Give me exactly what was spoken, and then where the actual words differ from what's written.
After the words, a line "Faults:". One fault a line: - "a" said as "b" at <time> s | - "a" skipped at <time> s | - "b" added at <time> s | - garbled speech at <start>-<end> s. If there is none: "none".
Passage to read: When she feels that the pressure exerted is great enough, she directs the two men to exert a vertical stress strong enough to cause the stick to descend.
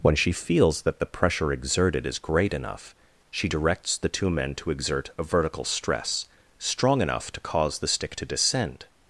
When she feels that the pressure exerted is great enough, she directs the two men to exert a vertical stress strong enough to cause the stick to descend.
Faults:
none